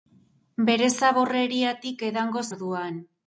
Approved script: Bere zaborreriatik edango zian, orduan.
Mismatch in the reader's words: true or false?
true